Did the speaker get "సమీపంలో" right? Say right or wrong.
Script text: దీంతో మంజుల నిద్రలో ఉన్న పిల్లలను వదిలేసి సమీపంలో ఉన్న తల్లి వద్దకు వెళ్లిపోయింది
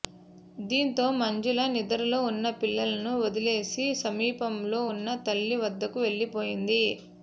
right